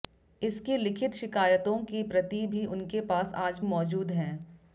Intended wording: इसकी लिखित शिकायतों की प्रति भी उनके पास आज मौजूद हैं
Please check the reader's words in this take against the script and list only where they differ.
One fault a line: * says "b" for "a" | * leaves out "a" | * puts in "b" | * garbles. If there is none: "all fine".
all fine